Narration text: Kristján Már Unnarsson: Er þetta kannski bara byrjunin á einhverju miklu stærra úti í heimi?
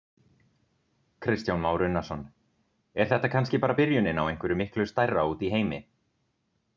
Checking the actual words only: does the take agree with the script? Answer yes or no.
yes